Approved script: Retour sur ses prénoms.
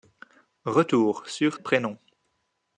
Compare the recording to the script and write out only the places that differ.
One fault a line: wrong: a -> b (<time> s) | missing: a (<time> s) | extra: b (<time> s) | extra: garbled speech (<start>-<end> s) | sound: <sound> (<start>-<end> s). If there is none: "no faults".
missing: ses (1.6 s)